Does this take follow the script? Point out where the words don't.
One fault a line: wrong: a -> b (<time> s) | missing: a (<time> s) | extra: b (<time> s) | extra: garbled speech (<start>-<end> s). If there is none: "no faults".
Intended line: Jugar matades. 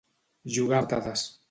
no faults